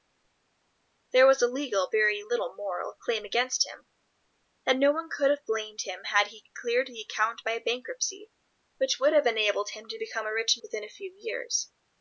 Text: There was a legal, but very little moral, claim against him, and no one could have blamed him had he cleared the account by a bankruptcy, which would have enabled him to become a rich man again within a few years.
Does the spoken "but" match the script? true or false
false